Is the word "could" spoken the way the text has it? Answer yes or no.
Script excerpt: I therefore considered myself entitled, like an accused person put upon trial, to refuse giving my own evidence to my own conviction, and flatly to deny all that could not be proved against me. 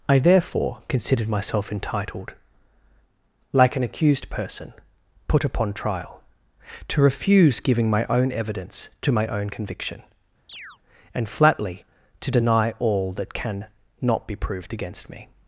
no